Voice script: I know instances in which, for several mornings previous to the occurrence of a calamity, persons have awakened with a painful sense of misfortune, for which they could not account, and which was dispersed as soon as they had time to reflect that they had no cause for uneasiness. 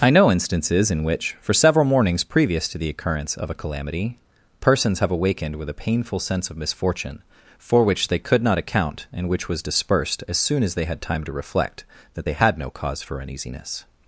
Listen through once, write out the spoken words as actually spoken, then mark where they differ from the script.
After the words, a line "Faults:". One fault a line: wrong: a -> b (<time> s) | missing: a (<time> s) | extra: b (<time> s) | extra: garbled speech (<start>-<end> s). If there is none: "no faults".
I know instances in which, for several mornings previous to the occurrence of a calamity, persons have awakened with a painful sense of misfortune, for which they could not account, and which was dispersed as soon as they had time to reflect that they had no cause for uneasiness.
Faults:
no faults